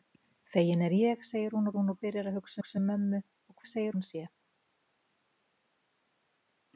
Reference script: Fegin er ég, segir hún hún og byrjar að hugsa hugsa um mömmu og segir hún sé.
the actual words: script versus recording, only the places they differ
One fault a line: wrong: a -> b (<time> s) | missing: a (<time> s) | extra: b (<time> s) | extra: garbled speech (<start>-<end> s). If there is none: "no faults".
no faults